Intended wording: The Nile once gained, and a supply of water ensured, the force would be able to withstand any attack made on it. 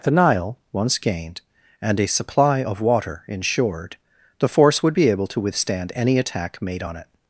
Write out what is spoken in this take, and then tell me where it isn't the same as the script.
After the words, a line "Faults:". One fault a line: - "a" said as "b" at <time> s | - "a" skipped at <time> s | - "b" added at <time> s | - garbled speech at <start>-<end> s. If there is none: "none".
The Nile once gained, and a supply of water ensured, the force would be able to withstand any attack made on it.
Faults:
none